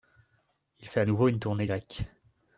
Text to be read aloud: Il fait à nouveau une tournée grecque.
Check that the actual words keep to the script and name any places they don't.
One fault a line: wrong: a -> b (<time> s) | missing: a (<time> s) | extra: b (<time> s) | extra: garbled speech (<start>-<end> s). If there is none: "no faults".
no faults